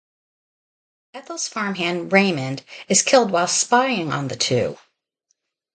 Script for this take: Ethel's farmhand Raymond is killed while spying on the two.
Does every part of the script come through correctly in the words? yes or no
yes